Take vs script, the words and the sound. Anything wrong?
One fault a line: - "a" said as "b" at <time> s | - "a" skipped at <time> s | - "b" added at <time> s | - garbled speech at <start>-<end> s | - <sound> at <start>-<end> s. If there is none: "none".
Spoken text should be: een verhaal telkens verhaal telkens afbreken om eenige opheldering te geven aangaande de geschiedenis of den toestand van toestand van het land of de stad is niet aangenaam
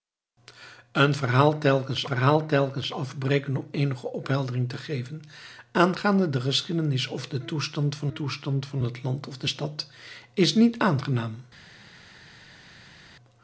none